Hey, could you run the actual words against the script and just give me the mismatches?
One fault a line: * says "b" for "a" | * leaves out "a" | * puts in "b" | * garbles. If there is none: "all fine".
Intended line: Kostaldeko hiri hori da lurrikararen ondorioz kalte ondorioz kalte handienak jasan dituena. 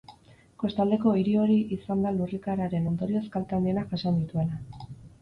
* puts in "izan"
* leaves out "ondorioz kalte"